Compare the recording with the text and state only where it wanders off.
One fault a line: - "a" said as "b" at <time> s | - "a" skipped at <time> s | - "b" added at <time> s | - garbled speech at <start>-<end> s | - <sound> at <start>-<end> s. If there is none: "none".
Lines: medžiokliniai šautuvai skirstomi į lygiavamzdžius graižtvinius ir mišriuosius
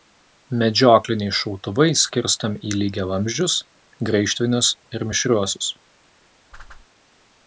- whoosh at 6.5-6.9 s